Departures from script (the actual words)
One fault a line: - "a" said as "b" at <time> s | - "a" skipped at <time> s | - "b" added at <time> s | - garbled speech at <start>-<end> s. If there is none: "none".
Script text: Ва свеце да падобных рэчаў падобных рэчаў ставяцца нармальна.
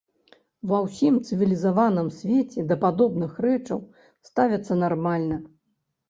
- "ўсім цывілізаваным" added at 0.8 s
- "падобных рэчаў" skipped at 3.8 s